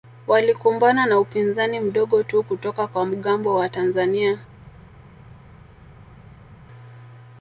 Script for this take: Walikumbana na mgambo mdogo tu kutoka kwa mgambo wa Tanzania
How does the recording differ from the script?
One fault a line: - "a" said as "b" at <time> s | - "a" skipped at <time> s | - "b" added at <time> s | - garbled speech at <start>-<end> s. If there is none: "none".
- "mgambo" said as "upinzani" at 1.2 s